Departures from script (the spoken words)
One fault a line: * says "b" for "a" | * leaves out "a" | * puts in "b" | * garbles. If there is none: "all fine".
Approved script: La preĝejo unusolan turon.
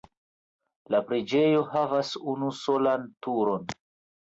* puts in "havas"